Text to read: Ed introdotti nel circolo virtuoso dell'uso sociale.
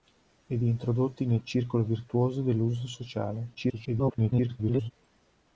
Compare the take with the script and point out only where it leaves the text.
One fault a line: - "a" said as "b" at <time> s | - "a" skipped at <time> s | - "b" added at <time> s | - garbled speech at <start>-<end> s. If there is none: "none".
- garbled speech at 3.5-4.9 s